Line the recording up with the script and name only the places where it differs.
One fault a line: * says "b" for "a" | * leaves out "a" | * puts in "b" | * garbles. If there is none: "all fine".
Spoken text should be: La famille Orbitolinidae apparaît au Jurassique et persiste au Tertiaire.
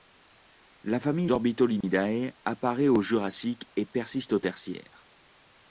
all fine